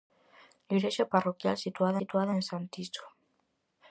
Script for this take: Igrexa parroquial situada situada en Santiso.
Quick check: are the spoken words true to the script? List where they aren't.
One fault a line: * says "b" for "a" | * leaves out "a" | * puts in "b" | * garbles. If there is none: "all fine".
all fine